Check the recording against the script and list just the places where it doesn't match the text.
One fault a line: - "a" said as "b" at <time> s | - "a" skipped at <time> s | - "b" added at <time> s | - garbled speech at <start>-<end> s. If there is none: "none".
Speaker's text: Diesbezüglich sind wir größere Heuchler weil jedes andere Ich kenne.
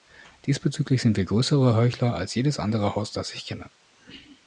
- "weil" said as "als" at 2.1 s
- "Haus das" added at 2.9 s